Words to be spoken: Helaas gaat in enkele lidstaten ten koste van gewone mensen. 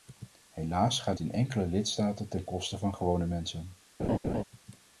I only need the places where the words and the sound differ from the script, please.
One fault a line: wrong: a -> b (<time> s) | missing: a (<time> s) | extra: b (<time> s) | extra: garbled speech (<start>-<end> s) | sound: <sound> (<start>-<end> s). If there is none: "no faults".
sound: laugh (4.0-4.4 s)